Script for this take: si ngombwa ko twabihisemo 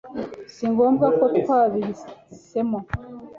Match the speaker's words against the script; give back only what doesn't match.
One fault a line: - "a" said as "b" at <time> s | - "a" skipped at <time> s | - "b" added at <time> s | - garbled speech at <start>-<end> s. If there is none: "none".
none